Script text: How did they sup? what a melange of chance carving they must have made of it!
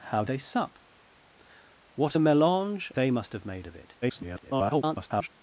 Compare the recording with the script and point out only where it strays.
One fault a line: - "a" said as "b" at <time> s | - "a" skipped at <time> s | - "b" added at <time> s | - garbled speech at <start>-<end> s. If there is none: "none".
- "did" skipped at 0.3 s
- "of chance carving" skipped at 2.9 s
- garbled speech at 4.0-5.3 s